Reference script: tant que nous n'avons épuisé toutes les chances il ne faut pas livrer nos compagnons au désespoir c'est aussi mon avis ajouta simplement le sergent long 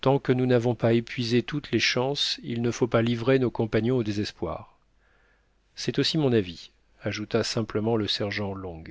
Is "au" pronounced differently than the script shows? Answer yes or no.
no